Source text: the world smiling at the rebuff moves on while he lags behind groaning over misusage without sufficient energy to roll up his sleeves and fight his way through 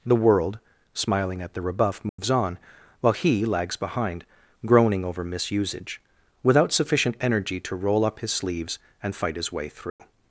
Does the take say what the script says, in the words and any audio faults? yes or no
no